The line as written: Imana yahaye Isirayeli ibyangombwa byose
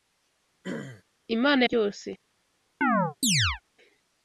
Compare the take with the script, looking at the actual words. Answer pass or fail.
fail